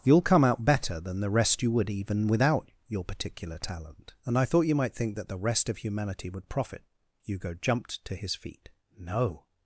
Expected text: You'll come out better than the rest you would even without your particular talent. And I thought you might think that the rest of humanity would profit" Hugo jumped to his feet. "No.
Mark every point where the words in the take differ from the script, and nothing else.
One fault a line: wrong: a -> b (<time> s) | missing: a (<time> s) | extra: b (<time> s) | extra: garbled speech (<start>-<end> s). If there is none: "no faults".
no faults